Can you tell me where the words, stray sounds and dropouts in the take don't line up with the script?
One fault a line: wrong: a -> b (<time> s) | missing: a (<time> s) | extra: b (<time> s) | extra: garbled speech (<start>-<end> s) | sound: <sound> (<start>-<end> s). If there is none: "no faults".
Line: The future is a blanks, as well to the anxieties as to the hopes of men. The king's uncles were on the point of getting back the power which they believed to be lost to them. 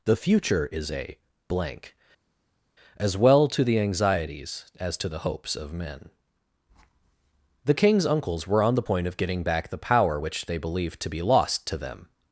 wrong: blanks -> blank (1.5 s)